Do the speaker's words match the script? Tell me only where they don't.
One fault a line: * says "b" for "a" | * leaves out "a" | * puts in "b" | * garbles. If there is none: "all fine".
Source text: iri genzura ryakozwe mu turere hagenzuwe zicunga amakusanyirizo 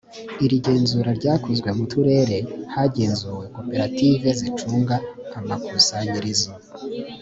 * puts in "koperative"